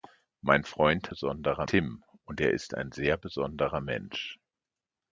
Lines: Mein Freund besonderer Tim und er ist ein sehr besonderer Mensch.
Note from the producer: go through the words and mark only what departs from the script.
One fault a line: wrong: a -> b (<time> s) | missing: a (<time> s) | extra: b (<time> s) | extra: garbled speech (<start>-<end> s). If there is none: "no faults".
no faults